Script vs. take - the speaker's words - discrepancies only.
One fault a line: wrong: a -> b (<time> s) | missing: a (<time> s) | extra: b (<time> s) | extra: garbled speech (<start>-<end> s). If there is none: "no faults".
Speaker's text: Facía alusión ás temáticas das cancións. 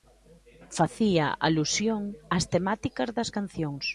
no faults